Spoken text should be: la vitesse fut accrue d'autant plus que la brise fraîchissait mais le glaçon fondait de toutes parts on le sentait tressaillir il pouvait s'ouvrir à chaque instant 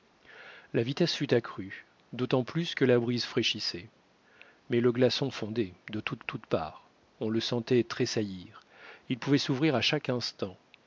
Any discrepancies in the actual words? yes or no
yes